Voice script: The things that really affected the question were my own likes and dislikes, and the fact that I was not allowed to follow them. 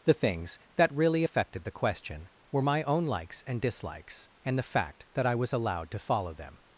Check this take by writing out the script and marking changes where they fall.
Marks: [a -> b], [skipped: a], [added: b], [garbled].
The things that really affected the question were my own likes and dislikes, and the fact that I was [skipped: not] allowed to follow them.